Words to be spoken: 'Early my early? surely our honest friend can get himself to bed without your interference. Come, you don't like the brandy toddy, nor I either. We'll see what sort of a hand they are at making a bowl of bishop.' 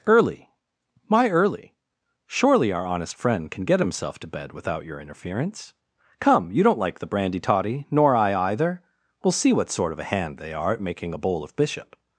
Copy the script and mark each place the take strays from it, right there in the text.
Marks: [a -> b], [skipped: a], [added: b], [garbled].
'Early my early? surely our honest friend can get himself to bed without your interference. Come, you don't like the brandy toddy, nor I either. We'll see what sort of a hand they are at making a bowl of bishop.'